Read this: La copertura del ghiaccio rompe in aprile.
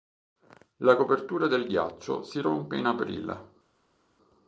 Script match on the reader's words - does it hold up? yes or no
no